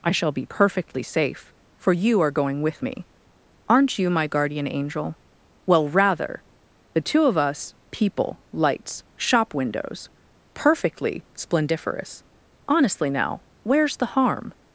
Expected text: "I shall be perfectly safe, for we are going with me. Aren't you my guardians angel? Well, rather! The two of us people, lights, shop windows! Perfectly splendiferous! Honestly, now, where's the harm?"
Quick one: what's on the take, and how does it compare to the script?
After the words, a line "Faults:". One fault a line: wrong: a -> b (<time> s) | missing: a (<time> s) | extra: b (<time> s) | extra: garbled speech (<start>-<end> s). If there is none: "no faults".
"I shall be perfectly safe, for you are going with me. Aren't you my guardian angel? Well, rather! The two of us people, lights, shop windows! Perfectly splendiferous! Honestly, now, where's the harm?"
Faults:
wrong: we -> you (1.9 s)
wrong: guardians -> guardian (4.3 s)